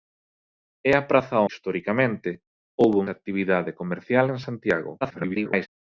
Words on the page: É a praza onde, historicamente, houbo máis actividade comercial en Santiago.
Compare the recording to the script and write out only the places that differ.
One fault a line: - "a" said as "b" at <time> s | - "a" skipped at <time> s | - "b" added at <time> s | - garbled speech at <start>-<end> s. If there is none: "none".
- "onde" skipped at 1.4 s
- "máis" skipped at 3.0 s
- garbled speech at 5.0-5.7 s